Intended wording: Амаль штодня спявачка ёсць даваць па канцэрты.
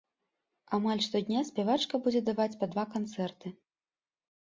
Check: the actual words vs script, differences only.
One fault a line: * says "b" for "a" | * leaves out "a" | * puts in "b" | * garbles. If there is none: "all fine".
* says "будзе" for "ёсць"
* puts in "два"